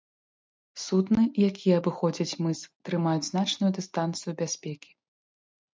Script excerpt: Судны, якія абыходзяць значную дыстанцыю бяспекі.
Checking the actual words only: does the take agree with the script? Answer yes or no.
no